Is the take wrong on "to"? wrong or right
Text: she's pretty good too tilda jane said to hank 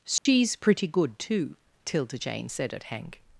wrong